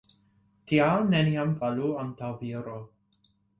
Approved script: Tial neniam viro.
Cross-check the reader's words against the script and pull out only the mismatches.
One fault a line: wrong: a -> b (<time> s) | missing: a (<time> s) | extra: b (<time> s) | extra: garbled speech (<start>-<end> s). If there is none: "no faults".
extra: falu antaŭ (1.6 s)